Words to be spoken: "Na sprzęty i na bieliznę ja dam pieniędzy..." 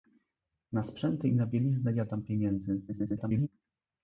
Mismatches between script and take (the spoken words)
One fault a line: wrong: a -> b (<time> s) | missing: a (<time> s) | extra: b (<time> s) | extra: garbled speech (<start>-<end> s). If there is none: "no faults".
extra: garbled speech (2.9-3.5 s)